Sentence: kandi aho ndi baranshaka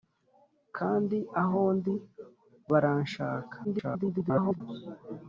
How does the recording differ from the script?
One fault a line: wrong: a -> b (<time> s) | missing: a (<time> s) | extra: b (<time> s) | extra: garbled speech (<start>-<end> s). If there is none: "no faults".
extra: garbled speech (3.6-4.6 s)